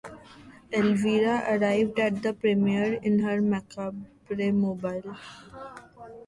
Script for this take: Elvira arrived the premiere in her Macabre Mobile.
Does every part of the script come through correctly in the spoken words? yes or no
no